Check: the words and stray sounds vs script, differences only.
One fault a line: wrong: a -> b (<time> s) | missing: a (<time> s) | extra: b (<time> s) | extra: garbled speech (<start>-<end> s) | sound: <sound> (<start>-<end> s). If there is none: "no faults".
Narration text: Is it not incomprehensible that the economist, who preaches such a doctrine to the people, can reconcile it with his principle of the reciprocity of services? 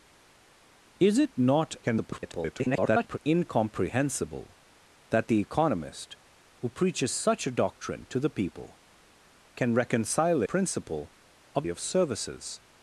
extra: garbled speech (1.8-3.2 s)
missing: it with his (10.4 s)
missing: the reciprocity (11.7 s)